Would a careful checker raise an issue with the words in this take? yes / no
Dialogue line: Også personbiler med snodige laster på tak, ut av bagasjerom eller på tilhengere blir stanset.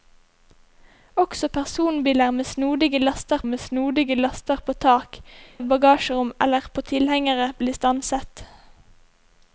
yes